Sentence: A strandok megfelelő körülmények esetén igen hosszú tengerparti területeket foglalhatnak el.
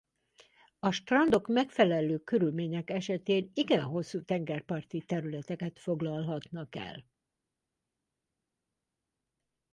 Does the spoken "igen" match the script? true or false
true